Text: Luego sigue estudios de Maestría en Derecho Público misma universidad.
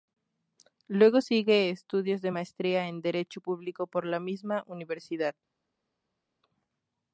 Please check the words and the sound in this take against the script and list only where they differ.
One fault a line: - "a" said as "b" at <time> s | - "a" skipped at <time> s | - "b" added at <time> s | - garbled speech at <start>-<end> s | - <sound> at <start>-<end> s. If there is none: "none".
- "por la" added at 3.9 s